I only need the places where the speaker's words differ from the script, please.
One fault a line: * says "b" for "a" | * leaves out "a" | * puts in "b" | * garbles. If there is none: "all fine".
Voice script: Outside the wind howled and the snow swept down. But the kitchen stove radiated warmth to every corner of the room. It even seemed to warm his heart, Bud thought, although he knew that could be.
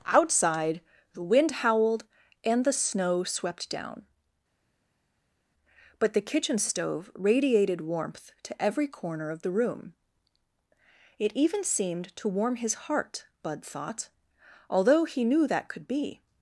all fine